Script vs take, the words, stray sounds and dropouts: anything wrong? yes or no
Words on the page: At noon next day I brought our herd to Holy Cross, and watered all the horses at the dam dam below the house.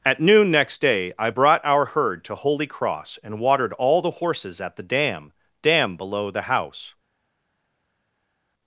no